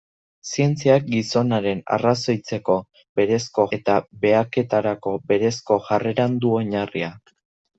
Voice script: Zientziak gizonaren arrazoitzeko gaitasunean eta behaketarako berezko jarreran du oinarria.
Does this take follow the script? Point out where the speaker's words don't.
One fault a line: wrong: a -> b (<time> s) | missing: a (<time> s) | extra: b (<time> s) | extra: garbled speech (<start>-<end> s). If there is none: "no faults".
wrong: gaitasunean -> berezko (3.2 s)